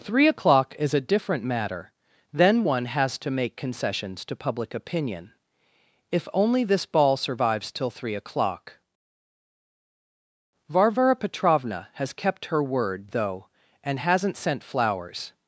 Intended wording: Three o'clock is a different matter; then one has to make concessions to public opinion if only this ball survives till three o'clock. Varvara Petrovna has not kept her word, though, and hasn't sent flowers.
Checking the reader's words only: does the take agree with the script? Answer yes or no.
no